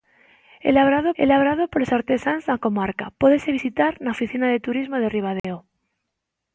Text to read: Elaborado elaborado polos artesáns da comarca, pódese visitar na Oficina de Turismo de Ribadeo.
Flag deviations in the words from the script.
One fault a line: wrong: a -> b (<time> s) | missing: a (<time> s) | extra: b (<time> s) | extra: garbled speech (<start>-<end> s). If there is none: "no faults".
no faults